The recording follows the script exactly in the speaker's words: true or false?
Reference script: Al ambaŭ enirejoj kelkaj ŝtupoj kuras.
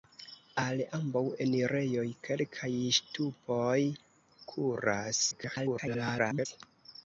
false